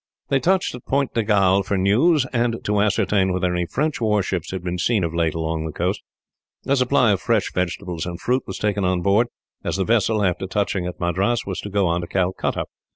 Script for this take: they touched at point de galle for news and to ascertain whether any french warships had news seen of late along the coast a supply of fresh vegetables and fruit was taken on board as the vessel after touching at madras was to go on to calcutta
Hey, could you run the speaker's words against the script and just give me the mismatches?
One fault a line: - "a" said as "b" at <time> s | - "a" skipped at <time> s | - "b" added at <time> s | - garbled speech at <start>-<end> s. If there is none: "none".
- "news" said as "been" at 4.6 s